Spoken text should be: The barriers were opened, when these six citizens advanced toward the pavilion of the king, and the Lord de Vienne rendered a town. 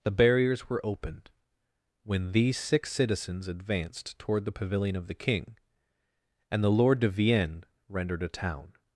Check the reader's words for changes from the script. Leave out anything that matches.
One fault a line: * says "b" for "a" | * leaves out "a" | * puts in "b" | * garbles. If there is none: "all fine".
all fine